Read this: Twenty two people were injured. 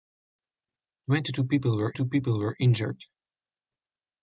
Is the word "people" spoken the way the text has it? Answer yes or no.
yes